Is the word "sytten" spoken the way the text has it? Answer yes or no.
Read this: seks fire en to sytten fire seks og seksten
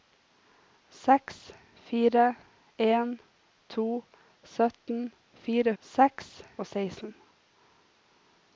yes